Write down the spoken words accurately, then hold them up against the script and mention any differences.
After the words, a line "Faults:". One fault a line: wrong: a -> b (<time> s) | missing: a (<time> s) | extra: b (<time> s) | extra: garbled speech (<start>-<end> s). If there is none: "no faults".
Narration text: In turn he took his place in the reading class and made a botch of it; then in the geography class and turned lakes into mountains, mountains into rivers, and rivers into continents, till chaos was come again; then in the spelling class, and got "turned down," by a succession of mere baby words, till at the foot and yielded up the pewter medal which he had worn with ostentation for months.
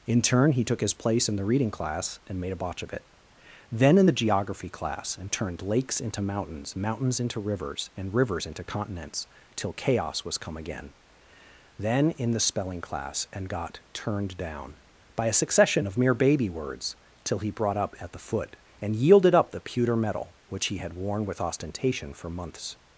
In turn he took his place in the reading class and made a botch of it; then in the geography class and turned lakes into mountains, mountains into rivers, and rivers into continents, till chaos was come again; then in the spelling class, and got "turned down," by a succession of mere baby words, till he brought up at the foot and yielded up the pewter medal which he had worn with ostentation for months.
Faults:
extra: he brought up (17.4 s)